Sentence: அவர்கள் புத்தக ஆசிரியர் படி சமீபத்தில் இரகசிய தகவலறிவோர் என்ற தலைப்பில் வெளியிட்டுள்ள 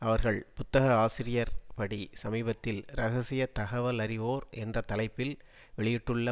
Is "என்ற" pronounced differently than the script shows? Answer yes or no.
no